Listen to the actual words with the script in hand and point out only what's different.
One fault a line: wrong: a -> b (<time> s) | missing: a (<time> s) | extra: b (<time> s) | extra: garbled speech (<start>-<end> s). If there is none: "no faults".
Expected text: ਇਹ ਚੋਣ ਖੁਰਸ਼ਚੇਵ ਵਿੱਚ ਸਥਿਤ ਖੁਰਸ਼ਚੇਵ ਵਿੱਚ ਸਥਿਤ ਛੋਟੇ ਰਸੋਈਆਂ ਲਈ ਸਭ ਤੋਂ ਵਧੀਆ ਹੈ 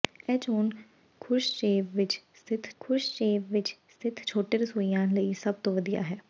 no faults